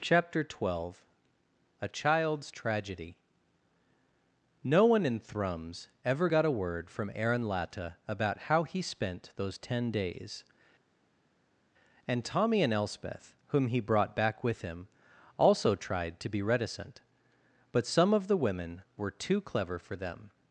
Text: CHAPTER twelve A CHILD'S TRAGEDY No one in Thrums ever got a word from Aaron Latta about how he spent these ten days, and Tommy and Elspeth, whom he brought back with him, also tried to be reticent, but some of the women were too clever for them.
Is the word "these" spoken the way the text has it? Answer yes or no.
no